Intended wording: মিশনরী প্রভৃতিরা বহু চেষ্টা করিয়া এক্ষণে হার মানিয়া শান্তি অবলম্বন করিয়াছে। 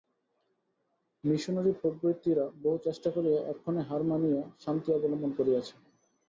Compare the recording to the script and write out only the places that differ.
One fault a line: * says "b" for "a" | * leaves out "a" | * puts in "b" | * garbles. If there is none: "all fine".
all fine